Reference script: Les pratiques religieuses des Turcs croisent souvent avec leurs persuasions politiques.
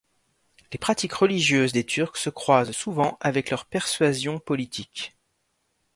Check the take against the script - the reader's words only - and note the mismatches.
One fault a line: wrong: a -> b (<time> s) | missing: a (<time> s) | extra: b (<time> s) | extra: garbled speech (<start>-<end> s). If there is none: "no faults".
extra: se (2.1 s)